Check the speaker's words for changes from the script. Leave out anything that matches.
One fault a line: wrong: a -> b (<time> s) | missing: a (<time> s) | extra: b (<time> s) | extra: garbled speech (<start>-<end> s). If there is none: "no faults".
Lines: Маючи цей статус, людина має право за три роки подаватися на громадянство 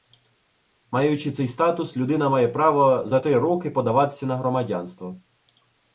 no faults